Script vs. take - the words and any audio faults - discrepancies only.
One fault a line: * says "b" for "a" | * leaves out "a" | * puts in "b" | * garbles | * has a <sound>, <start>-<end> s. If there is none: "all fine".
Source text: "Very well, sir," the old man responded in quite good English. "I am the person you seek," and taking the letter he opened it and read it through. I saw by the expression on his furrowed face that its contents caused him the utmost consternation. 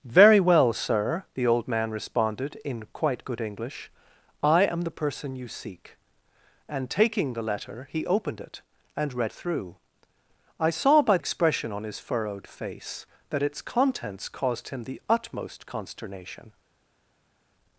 * leaves out "it"
* leaves out "the"